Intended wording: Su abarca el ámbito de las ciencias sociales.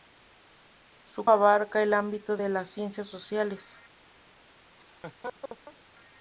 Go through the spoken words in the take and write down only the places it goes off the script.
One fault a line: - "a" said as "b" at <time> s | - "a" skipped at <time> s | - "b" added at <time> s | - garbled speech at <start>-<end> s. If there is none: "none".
none